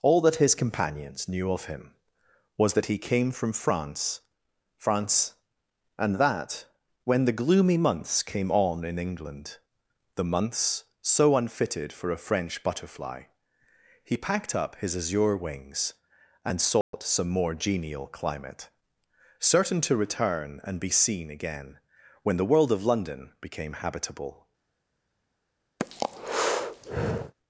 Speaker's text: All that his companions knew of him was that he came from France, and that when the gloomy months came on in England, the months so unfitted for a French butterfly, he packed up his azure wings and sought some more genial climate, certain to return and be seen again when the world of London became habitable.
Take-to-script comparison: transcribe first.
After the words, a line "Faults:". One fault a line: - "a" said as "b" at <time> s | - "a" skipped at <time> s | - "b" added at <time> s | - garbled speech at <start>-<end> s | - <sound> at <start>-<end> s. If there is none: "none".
All that his companions knew of him was that he came from France France, and that when the gloomy months came on in England, the months so unfitted for a French butterfly, he packed up his azure wings and sought some more genial climate, certain to return and be seen again when the world of London became habitable.
Faults:
- "France" added at 4.8 s
- dropout at 16.8-16.9 s
- breath at 25.8-27.3 s